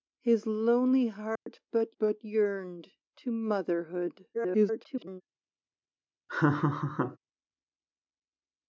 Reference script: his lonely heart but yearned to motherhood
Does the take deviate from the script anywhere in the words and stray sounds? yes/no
yes